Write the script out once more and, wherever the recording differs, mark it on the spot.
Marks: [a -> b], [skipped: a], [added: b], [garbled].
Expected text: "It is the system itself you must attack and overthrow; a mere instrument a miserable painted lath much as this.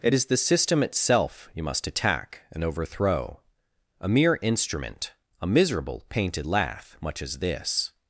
"It is the system itself you must attack and overthrow; a mere instrument a miserable painted lath much as this.